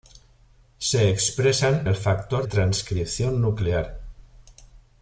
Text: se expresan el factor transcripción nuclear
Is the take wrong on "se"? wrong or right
right